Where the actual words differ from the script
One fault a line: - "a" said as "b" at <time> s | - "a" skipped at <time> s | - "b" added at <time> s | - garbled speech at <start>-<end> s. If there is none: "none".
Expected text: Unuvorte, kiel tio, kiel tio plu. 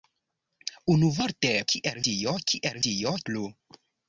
none